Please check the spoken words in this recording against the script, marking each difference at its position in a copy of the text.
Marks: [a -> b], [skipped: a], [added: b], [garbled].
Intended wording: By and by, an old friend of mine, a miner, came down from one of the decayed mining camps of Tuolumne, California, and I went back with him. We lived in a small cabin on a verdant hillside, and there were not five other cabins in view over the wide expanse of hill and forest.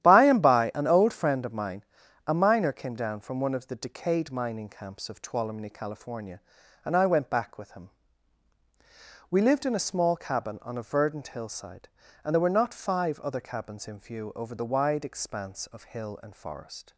By and by, an old friend of mine, a miner, came down from one of the decayed mining camps of Tuolumne, California, and I went back with him. We lived in a small cabin on a verdant hillside, and there were not five other cabins in view over the wide expanse of hill and forest.